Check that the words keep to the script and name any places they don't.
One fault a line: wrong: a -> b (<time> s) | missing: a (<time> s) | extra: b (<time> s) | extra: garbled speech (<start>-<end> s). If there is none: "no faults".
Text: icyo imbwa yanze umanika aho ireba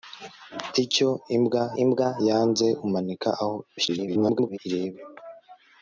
extra: imbwa (1.8 s)
extra: garbled speech (3.8-4.6 s)